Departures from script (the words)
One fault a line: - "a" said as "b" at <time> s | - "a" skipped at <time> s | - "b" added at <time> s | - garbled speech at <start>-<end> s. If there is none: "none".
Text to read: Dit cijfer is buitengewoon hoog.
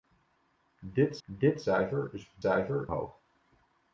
- "dit" added at 1.2 s
- "buitengewoon" said as "cijfer" at 2.4 s